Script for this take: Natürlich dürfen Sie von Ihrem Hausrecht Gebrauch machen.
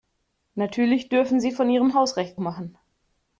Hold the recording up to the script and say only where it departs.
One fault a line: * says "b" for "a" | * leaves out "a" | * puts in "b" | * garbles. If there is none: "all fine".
* leaves out "Gebrauch"